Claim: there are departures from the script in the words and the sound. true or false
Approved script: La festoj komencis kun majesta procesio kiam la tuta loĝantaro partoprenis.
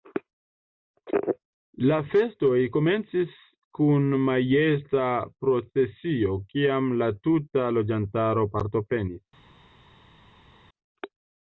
false